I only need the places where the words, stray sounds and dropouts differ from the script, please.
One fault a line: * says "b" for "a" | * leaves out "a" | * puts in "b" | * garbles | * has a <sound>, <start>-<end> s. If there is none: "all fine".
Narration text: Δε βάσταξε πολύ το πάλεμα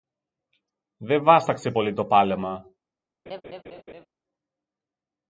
* has a laugh, 3.3-4.1 s